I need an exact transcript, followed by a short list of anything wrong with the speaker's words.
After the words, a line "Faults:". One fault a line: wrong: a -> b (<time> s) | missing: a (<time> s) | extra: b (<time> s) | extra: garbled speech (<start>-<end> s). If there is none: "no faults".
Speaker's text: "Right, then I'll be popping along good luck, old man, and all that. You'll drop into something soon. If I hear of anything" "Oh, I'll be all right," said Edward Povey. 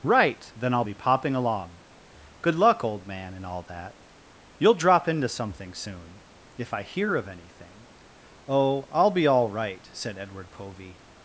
"Right, then I'll be popping along good luck, old man, and all that. You'll drop into something soon. If I hear of anything" "Oh, I'll be all right," said Edward Povey.
Faults:
no faults